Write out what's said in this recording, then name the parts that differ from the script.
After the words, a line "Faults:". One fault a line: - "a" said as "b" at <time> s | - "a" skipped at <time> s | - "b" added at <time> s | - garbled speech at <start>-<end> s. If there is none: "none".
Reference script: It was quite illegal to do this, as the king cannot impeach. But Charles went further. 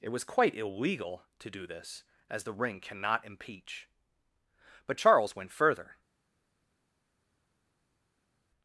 It was quite illegal to do this, as the ring cannot impeach. But Charles went further.
Faults:
- "king" said as "ring" at 2.5 s